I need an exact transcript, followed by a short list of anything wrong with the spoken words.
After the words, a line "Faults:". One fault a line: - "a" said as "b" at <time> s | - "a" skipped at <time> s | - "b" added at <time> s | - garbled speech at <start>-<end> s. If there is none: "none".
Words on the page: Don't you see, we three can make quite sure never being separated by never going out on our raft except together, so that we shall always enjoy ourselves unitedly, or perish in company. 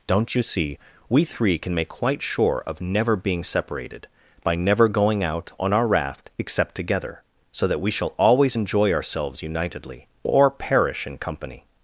Don't you see, we three can make quite sure of never being separated by never going out on our raft except together, so that we shall always enjoy ourselves unitedly, or perish in company.
Faults:
- "of" added at 2.7 s